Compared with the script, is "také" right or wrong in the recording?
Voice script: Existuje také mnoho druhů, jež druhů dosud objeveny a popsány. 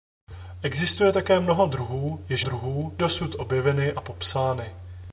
right